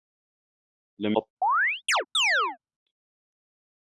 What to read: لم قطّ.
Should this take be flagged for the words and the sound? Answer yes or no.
yes